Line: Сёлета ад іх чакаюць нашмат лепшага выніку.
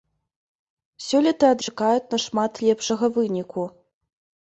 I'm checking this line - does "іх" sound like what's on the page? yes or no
no